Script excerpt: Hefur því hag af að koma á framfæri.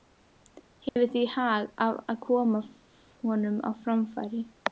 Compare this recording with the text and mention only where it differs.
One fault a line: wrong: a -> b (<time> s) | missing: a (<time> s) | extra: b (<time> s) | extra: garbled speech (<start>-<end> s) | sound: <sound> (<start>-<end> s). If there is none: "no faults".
sound: dropout (0.9-1.0 s)
extra: honum (3.2 s)